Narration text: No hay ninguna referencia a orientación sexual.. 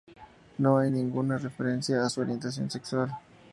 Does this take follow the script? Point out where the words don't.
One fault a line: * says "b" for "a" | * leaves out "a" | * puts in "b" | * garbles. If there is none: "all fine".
* puts in "su"